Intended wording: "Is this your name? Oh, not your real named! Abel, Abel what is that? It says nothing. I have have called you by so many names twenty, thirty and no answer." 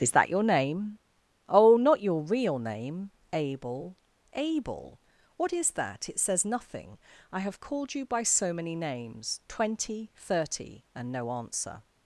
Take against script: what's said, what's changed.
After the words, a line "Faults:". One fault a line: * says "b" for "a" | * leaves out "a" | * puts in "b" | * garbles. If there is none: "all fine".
"Is that your name? Oh, not your real name! Abel, Abel what is that? It says nothing. I have called you by so many names twenty, thirty and no answer."
Faults:
* says "that" for "this"
* says "name" for "named"
* leaves out "have"